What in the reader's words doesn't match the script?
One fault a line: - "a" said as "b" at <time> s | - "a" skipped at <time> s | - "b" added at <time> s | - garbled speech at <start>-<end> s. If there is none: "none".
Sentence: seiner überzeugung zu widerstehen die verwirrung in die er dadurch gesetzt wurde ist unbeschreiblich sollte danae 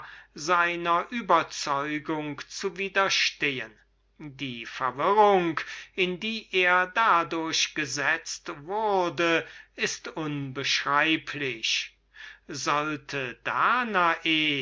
none